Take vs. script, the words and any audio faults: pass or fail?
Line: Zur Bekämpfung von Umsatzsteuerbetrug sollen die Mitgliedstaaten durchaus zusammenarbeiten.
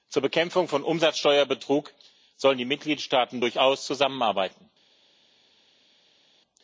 pass